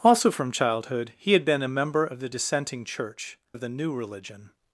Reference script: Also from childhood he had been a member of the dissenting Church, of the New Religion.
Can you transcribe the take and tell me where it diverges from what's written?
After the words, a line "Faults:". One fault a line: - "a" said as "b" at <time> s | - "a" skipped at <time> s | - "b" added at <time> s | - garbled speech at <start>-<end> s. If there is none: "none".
Also from childhood he had been a member of the dissenting Church, of the New Religion.
Faults:
none